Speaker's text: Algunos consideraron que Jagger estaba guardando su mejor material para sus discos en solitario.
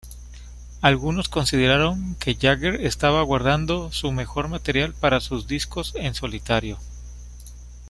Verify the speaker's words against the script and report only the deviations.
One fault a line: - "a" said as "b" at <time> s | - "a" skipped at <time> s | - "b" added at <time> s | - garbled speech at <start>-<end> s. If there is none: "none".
none